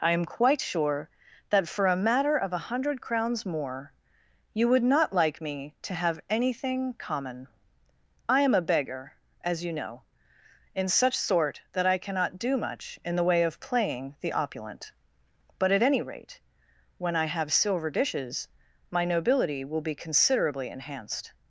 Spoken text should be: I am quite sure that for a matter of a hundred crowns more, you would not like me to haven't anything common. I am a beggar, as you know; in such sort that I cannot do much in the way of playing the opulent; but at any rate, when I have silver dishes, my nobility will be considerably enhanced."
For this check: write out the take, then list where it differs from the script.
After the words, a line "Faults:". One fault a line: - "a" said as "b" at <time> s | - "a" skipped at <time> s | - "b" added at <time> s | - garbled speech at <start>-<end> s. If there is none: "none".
I am quite sure that for a matter of a hundred crowns more, you would not like me to have anything common. I am a beggar, as you know; in such sort that I cannot do much in the way of playing the opulent; but at any rate, when I have silver dishes, my nobility will be considerably enhanced."
Faults:
- "haven't" said as "have" at 5.9 s